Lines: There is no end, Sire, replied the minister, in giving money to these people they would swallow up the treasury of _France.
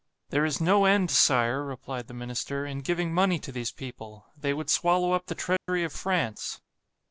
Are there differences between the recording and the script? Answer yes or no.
no